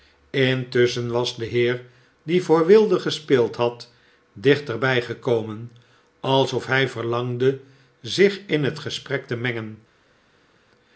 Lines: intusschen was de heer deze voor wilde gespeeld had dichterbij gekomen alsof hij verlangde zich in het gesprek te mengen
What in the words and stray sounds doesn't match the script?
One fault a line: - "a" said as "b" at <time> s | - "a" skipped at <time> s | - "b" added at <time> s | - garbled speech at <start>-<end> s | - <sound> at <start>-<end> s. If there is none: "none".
- "deze" said as "die" at 2.2 s